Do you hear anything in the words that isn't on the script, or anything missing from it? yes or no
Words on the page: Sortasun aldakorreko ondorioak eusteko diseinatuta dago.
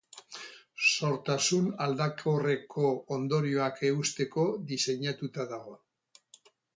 no